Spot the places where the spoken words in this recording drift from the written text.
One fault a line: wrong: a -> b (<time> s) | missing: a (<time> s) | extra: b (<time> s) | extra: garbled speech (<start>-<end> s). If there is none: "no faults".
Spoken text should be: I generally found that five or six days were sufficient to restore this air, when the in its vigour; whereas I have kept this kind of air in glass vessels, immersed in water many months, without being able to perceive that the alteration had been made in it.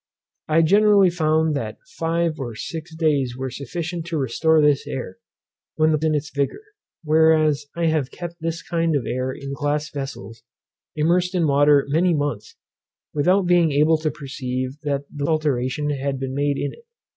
no faults